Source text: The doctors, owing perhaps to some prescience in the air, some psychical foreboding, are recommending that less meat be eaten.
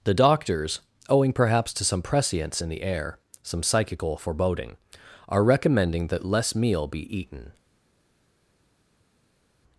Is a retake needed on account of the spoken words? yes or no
yes